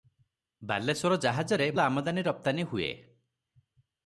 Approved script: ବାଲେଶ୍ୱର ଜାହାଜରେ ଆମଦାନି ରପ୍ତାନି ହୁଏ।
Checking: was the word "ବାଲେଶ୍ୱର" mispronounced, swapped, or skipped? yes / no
no